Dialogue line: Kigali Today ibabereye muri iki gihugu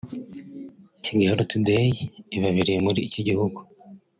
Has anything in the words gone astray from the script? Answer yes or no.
no